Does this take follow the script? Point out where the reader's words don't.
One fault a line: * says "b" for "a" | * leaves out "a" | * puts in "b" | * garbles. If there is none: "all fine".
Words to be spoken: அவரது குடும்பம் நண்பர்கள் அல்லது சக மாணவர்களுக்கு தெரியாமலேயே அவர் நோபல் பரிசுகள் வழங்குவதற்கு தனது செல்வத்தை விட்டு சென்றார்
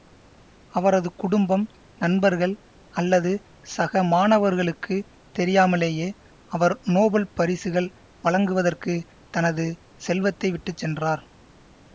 all fine